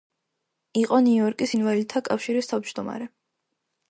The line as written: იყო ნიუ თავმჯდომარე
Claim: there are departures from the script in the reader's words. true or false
true